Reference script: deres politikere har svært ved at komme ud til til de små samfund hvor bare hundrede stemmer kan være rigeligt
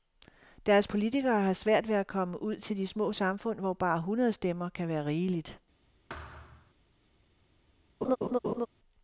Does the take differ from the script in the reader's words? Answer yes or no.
yes